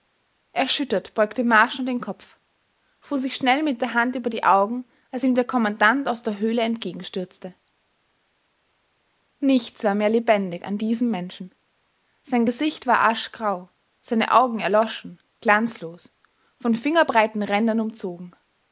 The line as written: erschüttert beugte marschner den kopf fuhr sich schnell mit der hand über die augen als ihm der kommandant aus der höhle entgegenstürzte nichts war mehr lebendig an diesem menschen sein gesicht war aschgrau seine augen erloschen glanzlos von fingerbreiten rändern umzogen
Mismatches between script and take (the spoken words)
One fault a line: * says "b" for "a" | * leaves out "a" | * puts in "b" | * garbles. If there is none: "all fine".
all fine